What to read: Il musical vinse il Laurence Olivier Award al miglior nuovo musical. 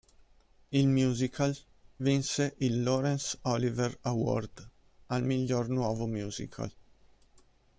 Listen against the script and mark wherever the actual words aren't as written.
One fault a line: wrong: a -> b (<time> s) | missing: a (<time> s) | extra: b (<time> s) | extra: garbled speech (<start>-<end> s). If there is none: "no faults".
no faults